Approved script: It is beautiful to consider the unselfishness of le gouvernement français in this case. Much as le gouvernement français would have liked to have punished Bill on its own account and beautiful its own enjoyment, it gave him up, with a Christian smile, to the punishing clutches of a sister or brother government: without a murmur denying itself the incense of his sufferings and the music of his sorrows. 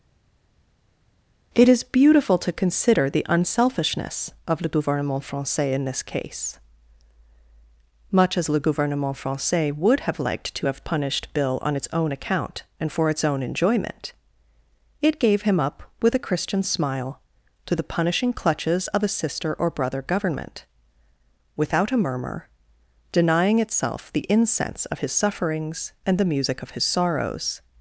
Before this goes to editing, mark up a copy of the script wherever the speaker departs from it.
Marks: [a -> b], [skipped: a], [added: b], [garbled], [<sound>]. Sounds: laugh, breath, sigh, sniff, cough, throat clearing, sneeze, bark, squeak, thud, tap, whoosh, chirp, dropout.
It is beautiful to consider the unselfishness of le gouvernement français in this case. Much as le gouvernement français would have liked to have punished Bill on its own account and [beautiful -> for] its own enjoyment, it gave him up, with a Christian smile, to the punishing clutches of a sister or brother government: without a murmur denying itself the incense of his sufferings and the music of his sorrows.